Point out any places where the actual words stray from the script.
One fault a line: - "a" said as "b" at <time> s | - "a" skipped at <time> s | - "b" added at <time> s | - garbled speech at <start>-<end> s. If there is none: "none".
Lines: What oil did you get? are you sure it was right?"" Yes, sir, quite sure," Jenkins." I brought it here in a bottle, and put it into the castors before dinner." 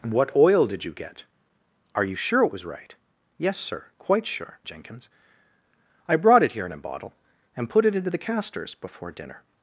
none